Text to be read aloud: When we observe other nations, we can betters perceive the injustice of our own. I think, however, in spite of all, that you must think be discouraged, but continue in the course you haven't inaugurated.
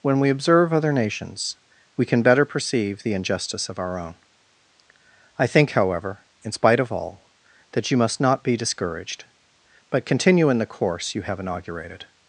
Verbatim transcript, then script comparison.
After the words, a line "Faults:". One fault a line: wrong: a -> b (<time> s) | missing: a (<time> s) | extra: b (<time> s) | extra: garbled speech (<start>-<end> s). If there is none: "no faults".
When we observe other nations, we can better perceive the injustice of our own. I think, however, in spite of all, that you must not be discouraged, but continue in the course you have inaugurated.
Faults:
wrong: betters -> better (2.2 s)
wrong: think -> not (8.2 s)
wrong: haven't -> have (11.2 s)